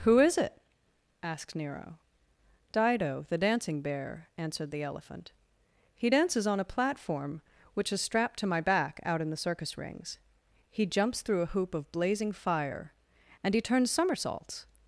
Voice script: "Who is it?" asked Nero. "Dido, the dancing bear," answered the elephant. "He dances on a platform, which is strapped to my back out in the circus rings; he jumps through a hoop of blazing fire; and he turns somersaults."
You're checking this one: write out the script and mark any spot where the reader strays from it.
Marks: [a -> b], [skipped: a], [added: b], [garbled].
"Who is it?" asked Nero. "Dido, the dancing bear," answered the elephant. "He dances on a platform, which is strapped to my back out in the circus rings; he jumps through a hoop of blazing fire; and he turns somersaults."